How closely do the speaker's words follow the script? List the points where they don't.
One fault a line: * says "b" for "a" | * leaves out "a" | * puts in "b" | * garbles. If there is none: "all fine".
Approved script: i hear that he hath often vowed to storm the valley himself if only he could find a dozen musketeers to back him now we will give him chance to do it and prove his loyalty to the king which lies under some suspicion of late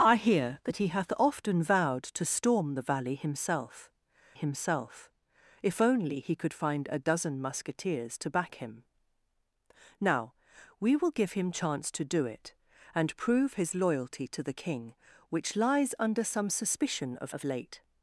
* puts in "himself"
* puts in "of"